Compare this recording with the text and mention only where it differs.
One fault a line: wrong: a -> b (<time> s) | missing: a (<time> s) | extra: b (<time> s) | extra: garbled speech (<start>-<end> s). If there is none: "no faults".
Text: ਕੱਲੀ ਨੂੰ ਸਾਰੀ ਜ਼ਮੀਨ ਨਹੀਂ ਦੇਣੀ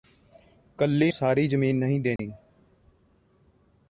missing: ਨੂੰ (1.1 s)